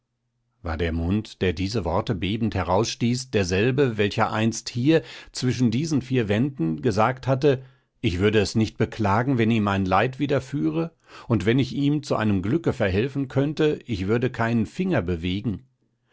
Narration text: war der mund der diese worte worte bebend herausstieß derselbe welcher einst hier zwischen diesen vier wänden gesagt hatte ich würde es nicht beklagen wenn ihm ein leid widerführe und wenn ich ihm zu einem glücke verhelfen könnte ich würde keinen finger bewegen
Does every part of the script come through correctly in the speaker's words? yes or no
no